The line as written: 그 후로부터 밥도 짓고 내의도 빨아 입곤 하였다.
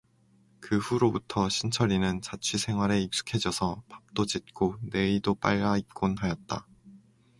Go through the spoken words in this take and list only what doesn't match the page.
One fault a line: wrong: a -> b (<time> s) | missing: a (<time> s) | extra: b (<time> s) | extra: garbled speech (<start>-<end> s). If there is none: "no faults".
extra: 신철이는 자취생활에 익숙해져서 (1.5 s)